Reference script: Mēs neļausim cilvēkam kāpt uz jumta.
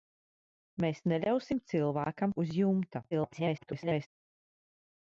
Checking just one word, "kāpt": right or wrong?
wrong